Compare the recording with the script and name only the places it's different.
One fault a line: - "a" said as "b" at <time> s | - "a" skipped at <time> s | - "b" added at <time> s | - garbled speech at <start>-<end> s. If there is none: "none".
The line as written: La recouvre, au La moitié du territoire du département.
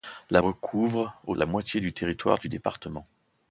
none